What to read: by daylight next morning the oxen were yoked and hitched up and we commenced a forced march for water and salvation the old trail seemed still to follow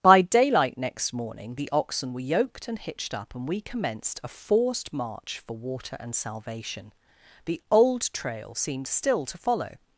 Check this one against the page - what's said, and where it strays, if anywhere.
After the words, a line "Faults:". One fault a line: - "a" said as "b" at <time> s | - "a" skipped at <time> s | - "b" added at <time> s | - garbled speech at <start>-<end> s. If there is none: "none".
by daylight next morning the oxen were yoked and hitched up and we commenced a forced march for water and salvation the old trail seemed still to follow
Faults:
none